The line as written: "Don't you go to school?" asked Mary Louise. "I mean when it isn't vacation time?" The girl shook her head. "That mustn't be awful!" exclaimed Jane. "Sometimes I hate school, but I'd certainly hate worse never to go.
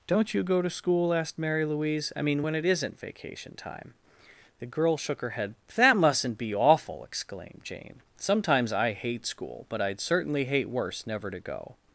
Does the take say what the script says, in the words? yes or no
yes